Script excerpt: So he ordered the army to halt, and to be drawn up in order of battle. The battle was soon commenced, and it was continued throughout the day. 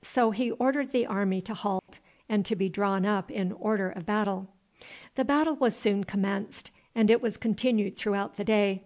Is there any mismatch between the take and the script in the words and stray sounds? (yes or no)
yes